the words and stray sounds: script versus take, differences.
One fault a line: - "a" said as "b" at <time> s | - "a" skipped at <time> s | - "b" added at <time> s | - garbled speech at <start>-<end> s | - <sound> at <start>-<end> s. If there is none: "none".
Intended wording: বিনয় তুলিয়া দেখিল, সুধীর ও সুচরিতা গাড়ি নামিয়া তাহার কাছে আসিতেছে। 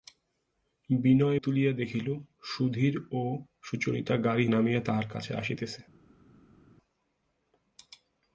none